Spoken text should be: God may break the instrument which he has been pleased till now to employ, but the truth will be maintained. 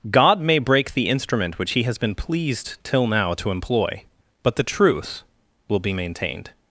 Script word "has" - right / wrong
right